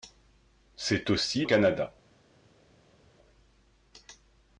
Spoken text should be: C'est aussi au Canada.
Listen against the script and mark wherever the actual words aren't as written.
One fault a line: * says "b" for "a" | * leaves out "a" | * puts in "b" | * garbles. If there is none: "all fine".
all fine